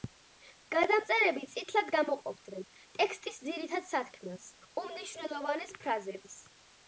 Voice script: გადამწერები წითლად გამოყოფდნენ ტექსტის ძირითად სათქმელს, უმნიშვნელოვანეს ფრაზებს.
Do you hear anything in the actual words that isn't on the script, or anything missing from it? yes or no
no